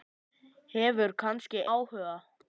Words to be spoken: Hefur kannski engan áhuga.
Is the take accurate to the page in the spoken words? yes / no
no